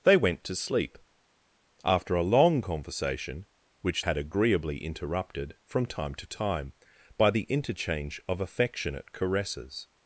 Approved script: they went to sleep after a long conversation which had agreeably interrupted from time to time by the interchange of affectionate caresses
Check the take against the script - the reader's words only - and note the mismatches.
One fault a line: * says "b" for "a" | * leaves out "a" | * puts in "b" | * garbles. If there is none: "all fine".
all fine